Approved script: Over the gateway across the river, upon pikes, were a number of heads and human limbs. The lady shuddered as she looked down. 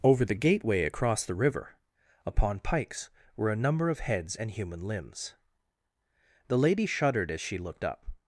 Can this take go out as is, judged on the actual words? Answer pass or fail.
fail